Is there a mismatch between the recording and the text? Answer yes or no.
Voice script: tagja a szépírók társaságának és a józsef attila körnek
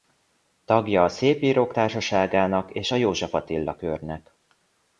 no